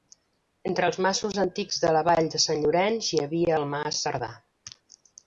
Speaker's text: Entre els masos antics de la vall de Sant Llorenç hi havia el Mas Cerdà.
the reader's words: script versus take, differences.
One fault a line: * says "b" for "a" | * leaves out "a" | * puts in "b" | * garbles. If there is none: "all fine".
all fine